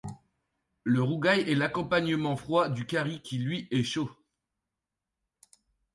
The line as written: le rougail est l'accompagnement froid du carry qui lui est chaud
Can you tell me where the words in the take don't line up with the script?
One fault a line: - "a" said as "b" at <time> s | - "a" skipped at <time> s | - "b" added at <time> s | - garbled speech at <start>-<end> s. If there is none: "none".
none